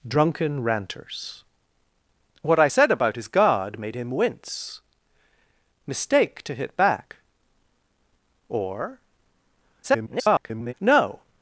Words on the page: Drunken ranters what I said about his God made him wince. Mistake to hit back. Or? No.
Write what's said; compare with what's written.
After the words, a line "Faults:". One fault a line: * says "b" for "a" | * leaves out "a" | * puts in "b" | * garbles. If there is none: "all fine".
Drunken ranters what I said about his God made him wince. Mistake to hit back. Or? [garbled] No.
Faults:
* garbles